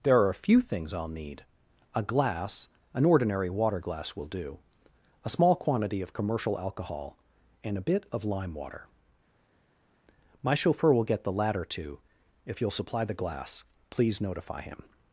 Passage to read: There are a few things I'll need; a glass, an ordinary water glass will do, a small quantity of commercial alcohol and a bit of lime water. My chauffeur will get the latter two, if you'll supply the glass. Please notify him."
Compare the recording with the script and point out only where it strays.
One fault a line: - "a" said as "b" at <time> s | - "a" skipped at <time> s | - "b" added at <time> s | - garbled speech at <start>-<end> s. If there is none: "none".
none